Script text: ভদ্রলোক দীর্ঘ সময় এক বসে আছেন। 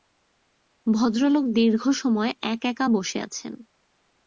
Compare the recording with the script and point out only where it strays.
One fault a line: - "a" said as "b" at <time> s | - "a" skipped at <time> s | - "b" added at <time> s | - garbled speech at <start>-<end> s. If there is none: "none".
- "একা" added at 2.6 s